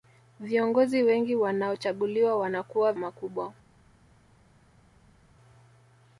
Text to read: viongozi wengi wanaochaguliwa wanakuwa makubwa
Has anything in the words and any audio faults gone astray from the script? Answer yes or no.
no